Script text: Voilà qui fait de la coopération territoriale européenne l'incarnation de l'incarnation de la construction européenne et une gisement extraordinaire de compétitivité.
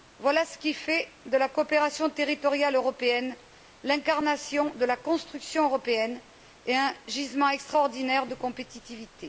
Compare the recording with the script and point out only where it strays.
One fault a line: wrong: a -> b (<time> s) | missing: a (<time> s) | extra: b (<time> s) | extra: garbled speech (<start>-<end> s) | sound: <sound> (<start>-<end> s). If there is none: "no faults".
extra: ce (0.5 s)
missing: l'incarnation de (4.8 s)
wrong: une -> un (6.7 s)